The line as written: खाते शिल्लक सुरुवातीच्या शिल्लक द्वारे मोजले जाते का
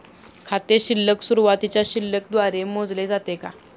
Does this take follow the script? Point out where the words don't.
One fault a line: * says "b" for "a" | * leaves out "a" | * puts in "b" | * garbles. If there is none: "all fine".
all fine